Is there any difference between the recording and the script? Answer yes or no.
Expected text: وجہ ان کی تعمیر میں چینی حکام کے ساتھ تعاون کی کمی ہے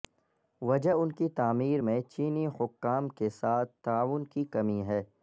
no